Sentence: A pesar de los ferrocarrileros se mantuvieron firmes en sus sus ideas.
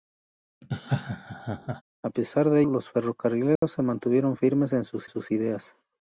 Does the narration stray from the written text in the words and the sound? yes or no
yes